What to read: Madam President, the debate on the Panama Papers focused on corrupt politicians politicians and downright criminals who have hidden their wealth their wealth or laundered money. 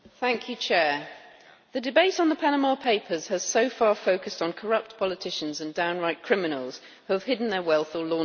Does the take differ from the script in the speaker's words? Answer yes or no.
yes